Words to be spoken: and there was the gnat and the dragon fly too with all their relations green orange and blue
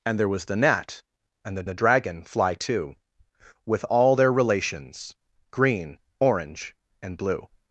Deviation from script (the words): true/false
true